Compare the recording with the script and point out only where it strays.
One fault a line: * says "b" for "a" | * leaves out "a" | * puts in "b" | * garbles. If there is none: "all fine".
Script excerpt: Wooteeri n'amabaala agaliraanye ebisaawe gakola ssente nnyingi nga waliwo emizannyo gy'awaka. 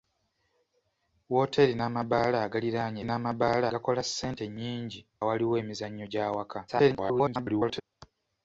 * says "n'amabaala" for "ebisaawe"
* leaves out "nga"
* garbles